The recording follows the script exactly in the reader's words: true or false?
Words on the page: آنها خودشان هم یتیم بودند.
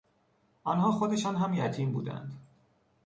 true